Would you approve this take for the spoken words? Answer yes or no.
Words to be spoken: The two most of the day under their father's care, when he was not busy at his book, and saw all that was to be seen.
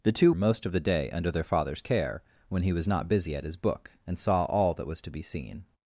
yes